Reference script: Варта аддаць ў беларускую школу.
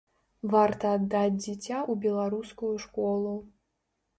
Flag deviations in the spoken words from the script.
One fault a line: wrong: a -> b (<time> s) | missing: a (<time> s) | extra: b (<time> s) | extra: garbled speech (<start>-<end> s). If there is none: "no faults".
extra: дзіця (1.4 s)